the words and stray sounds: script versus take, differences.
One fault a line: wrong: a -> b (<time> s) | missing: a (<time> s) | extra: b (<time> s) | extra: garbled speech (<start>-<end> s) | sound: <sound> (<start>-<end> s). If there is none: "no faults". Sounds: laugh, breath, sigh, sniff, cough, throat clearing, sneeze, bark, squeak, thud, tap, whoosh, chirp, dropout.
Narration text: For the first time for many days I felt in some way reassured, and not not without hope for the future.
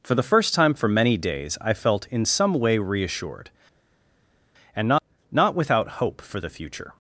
no faults